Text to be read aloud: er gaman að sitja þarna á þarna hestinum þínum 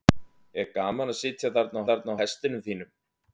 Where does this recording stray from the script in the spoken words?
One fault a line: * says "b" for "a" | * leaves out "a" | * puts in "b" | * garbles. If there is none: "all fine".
all fine